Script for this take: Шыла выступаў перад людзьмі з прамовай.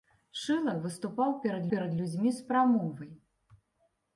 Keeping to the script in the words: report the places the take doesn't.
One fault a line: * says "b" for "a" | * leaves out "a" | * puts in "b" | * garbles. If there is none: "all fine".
* puts in "перад"